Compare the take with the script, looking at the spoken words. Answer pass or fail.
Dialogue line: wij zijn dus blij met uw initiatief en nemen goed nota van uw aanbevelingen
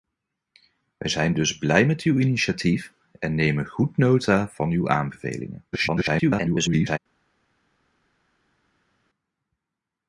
fail